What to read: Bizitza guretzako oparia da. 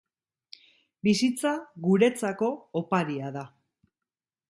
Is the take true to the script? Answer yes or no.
yes